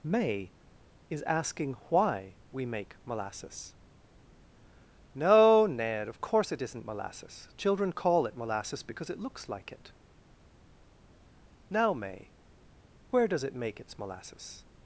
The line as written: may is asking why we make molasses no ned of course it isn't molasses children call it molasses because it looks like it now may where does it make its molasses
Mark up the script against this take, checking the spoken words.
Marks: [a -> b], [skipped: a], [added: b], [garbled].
may is asking why we make molasses no ned of course it isn't molasses children call it molasses because it looks like it now may where does it make its molasses